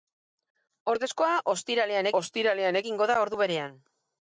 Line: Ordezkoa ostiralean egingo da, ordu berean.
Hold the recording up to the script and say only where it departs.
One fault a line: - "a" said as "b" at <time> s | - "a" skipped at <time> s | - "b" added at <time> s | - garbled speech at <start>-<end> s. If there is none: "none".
- "ostiralean" added at 2.2 s